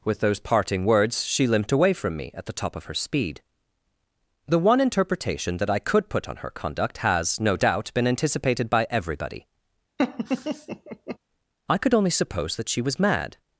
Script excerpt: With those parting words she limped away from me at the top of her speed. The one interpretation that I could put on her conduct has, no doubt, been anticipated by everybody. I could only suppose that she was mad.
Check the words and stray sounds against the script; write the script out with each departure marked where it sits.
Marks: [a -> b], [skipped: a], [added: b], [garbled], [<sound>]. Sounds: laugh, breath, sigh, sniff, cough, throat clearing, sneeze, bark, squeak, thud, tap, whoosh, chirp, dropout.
With those parting words she limped away from me at the top of her speed. The one interpretation that I could put on her conduct has, no doubt, been anticipated by everybody. [laugh] I could only suppose that she was mad.